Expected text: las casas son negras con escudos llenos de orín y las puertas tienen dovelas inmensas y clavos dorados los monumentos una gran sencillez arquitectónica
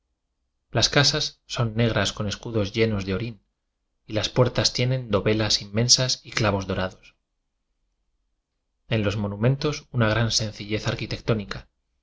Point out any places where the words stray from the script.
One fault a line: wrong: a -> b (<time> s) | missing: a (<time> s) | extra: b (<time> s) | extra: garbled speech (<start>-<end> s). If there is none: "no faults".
extra: en (8.9 s)